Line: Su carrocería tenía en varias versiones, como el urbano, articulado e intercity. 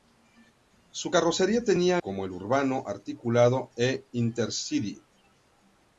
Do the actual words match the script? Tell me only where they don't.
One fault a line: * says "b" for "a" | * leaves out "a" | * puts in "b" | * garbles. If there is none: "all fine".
* leaves out "en varias versiones"